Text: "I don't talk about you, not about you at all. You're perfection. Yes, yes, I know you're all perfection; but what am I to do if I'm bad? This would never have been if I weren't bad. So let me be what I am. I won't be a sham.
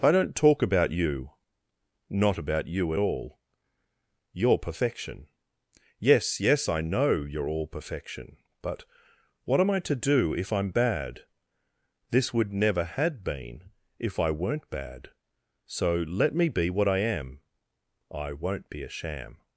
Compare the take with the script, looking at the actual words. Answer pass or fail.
fail